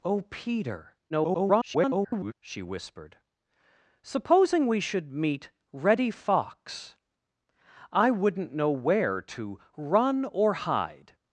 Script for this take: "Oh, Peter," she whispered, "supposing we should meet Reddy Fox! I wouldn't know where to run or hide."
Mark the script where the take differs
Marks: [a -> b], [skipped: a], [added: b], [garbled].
"Oh, Peter," [garbled] she whispered, "supposing we should meet Reddy Fox! I wouldn't know where to run or hide."